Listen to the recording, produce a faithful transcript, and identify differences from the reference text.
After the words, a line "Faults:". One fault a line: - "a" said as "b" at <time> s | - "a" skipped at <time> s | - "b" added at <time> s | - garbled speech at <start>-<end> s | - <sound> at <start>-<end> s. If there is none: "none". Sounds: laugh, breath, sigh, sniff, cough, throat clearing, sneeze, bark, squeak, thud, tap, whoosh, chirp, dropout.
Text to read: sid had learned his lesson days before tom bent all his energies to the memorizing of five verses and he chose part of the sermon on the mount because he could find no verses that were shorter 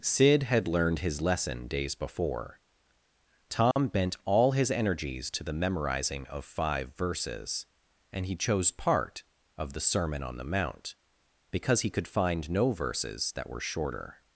sid had learned his lesson days before tom bent all his energies to the memorizing of five verses and he chose part of the sermon on the mount because he could find no verses that were shorter
Faults:
- dropout at 3.7-3.8 s